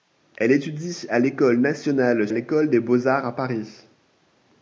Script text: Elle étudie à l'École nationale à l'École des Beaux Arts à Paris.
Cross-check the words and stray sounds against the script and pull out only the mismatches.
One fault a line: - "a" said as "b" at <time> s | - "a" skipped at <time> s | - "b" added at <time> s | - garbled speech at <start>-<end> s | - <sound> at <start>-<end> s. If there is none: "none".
none